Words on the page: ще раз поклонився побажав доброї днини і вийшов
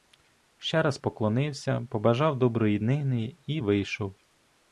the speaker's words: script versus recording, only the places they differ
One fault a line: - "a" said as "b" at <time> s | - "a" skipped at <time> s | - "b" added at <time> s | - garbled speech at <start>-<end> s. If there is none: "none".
none